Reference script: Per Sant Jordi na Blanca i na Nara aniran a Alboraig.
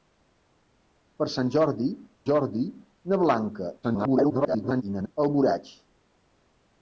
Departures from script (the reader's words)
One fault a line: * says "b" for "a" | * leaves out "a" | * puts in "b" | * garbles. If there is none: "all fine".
* puts in "Jordi"
* garbles
* leaves out "Nara aniran"